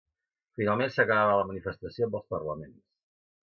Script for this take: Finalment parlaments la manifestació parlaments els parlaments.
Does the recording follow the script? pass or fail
fail